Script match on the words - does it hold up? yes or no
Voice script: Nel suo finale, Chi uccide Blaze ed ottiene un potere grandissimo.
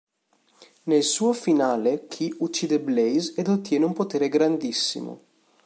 yes